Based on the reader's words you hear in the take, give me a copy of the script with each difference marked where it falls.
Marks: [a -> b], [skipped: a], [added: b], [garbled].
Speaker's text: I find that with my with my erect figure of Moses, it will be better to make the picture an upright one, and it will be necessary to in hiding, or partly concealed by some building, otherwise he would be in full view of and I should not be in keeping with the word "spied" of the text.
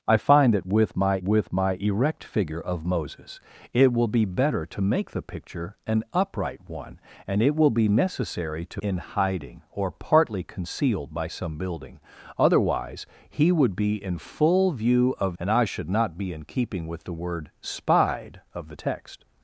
I find that with my with my erect figure of Moses, it will be better to make the picture an upright one, and it will be necessary to in hiding, or partly concealed by some building, otherwise he would be in full view of and I should not be in keeping with the word "spied" of the text.